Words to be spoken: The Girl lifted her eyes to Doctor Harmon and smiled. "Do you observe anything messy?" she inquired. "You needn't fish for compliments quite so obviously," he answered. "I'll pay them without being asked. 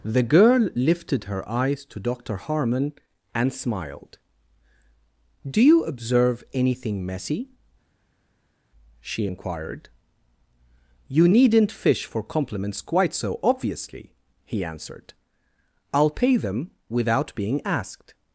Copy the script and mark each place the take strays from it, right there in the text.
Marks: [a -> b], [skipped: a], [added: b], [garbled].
The Girl lifted her eyes to Doctor Harmon and smiled. "Do you observe anything messy?" she inquired. "You needn't fish for compliments quite so obviously," he answered. "I'll pay them without being asked.